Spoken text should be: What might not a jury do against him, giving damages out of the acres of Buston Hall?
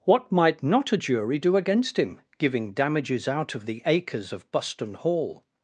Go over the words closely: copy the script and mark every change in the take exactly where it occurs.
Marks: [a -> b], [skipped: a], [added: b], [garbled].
What might not a jury do against him, giving damages out of the acres of Buston Hall?